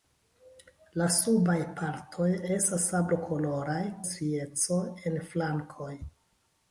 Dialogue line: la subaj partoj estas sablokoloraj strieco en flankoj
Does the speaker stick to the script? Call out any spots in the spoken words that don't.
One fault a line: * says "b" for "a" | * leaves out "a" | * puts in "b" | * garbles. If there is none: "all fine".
all fine